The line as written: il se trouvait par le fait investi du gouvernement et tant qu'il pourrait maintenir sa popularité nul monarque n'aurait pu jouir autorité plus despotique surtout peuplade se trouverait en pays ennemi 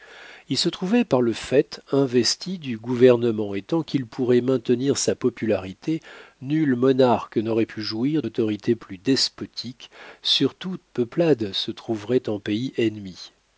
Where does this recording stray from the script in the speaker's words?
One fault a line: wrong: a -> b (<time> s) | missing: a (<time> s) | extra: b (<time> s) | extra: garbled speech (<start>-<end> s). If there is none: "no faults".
no faults